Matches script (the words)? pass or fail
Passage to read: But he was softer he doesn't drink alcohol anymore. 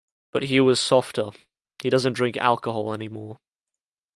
pass